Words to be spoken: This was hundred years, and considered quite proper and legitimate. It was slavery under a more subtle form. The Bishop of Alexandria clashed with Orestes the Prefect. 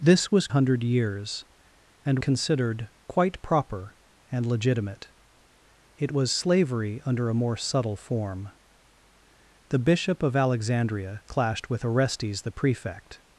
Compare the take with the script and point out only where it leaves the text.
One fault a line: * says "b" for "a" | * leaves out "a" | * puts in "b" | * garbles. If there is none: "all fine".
all fine